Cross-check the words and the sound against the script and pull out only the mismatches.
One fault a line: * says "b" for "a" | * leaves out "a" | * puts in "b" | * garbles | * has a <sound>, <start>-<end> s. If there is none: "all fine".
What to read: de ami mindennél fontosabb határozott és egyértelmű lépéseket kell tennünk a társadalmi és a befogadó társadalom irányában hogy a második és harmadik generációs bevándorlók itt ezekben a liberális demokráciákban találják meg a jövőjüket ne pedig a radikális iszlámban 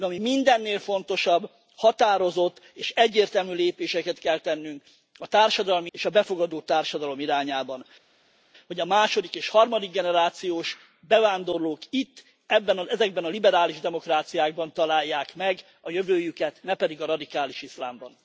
all fine